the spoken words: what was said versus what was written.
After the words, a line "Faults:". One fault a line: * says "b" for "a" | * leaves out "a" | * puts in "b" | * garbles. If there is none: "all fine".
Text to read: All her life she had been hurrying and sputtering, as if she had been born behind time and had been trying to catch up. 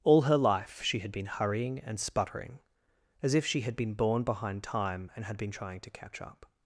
All her life she had been hurrying and sputtering, as if she had been born behind time and had been trying to catch up.
Faults:
all fine